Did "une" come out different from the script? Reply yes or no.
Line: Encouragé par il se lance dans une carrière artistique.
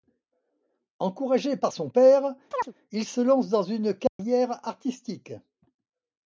no